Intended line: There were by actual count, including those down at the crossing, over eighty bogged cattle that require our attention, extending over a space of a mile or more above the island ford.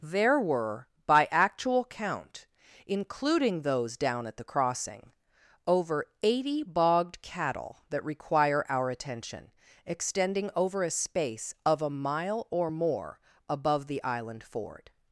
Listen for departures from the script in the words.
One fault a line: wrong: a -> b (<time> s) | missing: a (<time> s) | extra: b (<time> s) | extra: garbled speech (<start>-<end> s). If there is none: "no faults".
no faults